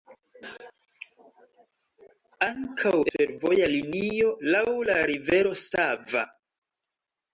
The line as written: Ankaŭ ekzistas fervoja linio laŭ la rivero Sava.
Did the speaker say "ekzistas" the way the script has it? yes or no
no